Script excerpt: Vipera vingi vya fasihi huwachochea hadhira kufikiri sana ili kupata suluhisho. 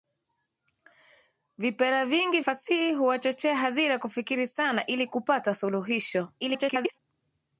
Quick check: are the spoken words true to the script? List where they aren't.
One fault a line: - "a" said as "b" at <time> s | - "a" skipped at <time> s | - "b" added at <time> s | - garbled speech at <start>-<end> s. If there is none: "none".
- "vya" skipped at 2.4 s
- garbled speech at 6.4-7.0 s